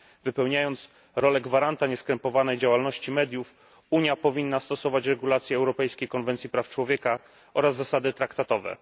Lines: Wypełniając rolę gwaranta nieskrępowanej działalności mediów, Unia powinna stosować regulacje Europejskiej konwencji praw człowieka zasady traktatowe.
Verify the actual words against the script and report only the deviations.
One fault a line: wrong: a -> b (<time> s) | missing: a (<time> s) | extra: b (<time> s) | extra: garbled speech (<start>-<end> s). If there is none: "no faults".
extra: oraz (7.5 s)